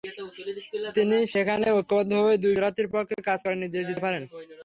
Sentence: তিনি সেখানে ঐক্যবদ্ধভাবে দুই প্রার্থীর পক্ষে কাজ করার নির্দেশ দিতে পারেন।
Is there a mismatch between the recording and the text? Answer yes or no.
no